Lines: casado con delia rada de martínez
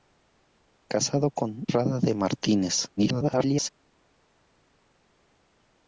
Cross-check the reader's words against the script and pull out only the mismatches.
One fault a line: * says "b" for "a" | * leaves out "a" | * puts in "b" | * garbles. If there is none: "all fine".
* leaves out "delia"
* garbles